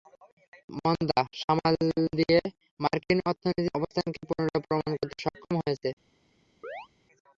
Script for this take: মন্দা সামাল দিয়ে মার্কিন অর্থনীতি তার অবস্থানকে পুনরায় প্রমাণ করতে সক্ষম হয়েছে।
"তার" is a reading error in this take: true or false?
true